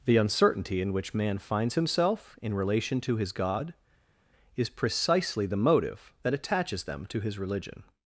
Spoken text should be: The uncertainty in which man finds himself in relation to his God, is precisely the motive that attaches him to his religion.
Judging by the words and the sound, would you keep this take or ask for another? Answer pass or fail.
fail